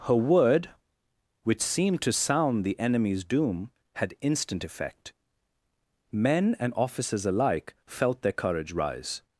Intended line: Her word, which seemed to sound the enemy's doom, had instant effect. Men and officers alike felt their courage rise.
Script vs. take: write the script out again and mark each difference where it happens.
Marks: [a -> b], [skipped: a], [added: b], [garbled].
Her word, which seemed to sound the enemy's doom, had instant effect. Men and officers alike felt their courage rise.